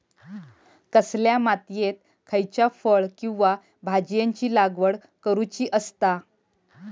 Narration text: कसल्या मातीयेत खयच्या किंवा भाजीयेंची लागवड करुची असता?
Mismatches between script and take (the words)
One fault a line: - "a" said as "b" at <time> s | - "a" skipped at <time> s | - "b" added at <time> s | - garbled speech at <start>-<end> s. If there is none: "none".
- "फळ" added at 2.8 s